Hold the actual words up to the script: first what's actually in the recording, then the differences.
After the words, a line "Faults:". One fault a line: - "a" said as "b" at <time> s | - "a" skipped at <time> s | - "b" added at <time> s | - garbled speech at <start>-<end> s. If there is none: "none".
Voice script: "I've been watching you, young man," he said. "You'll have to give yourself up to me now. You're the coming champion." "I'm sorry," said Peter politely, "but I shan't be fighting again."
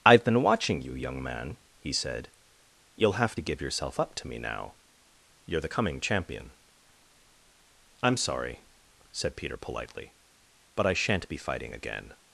"I've been watching you, young man," he said. "You'll have to give yourself up to me now. You're the coming champion." "I'm sorry," said Peter politely, "but I shan't be fighting again."
Faults:
none